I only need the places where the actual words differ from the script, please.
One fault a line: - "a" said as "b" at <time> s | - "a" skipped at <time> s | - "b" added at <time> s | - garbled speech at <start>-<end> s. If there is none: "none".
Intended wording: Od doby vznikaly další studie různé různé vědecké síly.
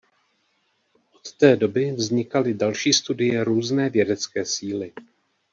- "té" added at 1.4 s
- "různé" skipped at 3.9 s